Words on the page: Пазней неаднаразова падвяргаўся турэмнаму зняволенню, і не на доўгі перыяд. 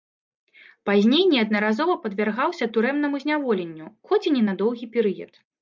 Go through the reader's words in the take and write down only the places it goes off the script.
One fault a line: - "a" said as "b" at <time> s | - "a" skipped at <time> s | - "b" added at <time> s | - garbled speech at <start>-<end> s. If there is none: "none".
- "хоць" added at 4.1 s